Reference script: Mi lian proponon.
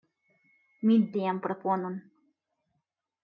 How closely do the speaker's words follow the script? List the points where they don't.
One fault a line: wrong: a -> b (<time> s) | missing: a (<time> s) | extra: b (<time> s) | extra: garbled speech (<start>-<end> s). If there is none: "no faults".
no faults